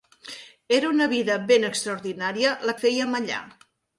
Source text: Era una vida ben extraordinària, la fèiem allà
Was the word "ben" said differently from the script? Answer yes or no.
no